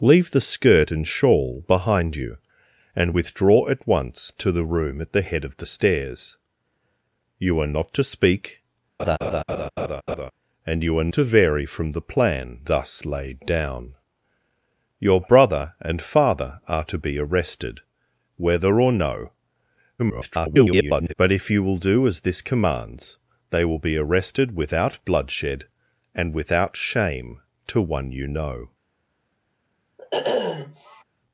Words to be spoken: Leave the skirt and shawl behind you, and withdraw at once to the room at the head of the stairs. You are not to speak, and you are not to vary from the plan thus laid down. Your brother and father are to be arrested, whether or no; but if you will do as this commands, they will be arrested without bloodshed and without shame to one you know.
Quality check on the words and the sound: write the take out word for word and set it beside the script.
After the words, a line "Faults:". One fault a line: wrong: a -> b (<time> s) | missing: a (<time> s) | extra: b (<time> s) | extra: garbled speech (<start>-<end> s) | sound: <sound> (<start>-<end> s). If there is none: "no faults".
Leave the skirt and shawl behind you, and withdraw at once to the room at the head of the stairs. You are not to speak, and you are to vary from the plan thus laid down. Your brother and father are to be arrested, whether or no; [garbled] but if you will do as this commands, they will be arrested without bloodshed and without shame to one you know.
Faults:
sound: laugh (9.0-10.3 s)
missing: not (11.1 s)
extra: garbled speech (20.0-21.1 s)
sound: sniff (30.0-31.0 s)